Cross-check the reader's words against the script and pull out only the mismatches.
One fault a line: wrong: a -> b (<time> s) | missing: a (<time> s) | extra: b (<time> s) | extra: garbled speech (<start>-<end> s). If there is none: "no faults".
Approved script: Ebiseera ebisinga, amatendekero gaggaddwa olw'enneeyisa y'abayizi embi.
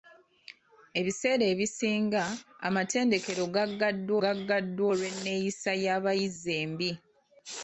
extra: gaggaddwa (4.2 s)